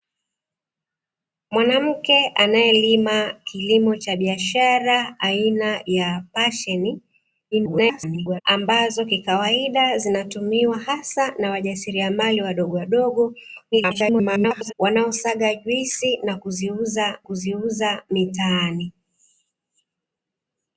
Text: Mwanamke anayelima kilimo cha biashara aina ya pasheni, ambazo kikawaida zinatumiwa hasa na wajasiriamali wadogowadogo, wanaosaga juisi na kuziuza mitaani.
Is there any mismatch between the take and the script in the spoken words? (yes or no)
yes